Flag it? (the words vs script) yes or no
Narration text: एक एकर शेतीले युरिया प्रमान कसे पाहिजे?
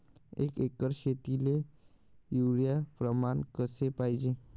no